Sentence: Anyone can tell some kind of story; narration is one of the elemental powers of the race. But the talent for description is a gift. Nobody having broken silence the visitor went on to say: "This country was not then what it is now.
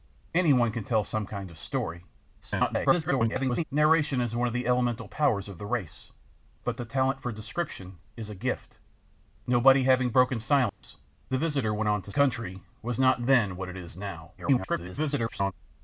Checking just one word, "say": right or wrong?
wrong